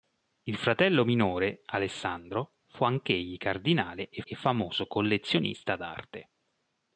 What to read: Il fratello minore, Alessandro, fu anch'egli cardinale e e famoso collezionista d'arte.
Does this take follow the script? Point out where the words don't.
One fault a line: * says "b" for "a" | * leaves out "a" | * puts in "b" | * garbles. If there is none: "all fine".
all fine